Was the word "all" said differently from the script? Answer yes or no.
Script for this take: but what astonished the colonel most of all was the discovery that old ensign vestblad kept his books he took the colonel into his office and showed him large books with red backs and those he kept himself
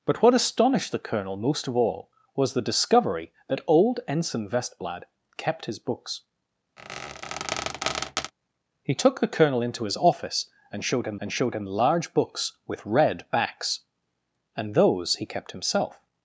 no